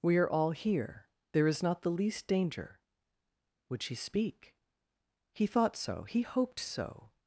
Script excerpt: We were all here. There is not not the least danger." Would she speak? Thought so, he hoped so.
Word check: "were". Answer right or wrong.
wrong